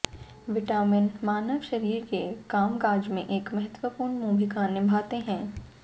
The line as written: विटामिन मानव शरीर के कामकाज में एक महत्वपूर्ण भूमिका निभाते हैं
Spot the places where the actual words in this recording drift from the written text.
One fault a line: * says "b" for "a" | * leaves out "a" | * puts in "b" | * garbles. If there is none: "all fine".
all fine